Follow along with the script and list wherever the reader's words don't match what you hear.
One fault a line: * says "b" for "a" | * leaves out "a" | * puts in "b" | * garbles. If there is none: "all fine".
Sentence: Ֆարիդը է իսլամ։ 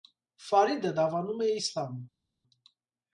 * puts in "դավանում"